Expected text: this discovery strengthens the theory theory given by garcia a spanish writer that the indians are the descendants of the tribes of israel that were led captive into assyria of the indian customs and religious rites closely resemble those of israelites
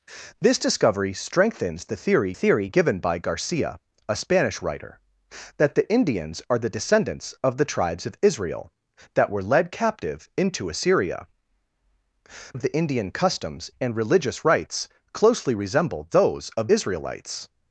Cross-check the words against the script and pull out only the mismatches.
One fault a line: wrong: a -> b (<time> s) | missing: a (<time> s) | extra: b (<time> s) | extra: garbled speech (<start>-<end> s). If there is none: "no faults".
no faults